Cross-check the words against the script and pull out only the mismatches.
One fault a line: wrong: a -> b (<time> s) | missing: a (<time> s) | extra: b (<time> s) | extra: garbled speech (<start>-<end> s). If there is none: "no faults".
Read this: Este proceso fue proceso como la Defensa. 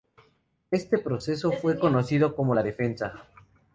wrong: proceso -> conocido (1.8 s)